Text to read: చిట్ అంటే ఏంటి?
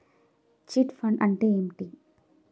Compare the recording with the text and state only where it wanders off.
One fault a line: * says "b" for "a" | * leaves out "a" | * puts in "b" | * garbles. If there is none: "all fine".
* puts in "ఫండ్"